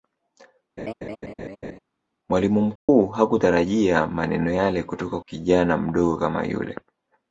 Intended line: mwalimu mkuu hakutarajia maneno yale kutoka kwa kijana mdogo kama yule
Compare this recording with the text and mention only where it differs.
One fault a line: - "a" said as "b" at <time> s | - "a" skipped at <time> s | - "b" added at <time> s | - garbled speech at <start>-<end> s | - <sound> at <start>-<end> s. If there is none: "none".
- laugh at 0.8-1.8 s
- dropout at 2.8-2.9 s
- "kwa" skipped at 5.2 s